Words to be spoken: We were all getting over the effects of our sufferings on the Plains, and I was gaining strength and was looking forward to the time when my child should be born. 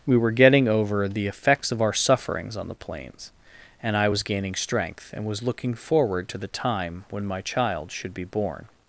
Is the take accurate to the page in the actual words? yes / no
no